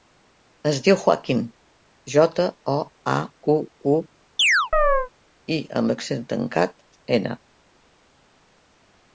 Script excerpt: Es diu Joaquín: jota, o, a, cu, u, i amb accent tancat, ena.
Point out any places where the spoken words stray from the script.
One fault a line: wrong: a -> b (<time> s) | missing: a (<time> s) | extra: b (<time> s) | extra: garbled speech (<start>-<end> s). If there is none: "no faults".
no faults